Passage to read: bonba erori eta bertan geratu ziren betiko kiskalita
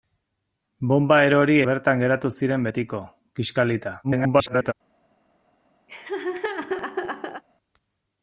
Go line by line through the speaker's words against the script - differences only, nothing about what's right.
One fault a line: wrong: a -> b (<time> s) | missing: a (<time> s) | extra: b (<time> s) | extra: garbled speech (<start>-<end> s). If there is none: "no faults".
missing: eta (1.6 s)
extra: garbled speech (4.0-4.7 s)